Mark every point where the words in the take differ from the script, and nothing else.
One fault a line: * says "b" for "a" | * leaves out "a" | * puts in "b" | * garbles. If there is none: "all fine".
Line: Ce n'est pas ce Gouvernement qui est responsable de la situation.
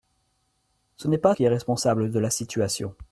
* leaves out "ce Gouvernement"